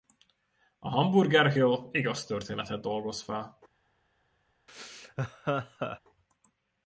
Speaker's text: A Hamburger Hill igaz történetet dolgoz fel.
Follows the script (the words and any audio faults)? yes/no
no